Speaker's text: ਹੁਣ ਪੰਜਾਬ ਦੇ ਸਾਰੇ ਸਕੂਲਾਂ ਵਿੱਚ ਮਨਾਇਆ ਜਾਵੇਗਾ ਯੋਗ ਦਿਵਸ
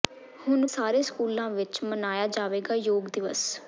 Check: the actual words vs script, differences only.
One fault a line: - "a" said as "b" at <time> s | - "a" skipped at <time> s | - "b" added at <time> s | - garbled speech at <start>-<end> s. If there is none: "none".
- "ਪੰਜਾਬ ਦੇ" skipped at 0.7 s